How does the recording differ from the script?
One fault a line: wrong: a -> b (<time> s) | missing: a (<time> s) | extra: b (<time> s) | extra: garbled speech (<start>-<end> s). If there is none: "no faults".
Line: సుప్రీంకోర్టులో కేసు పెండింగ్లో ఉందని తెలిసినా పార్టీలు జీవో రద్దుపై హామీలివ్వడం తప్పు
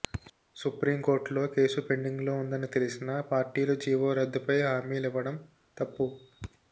no faults